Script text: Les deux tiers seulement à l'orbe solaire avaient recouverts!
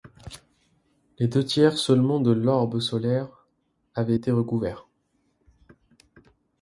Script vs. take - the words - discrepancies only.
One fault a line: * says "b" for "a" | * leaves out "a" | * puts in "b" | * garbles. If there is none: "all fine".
* says "de" for "à"
* puts in "été"